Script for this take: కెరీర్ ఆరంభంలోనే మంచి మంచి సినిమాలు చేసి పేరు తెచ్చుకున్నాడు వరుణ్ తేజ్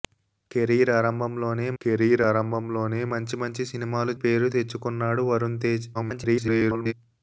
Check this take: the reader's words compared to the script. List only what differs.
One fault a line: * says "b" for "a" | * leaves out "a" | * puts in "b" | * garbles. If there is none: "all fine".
* puts in "కెరీర్ ఆరంభంలోనే"
* leaves out "చేసి"
* garbles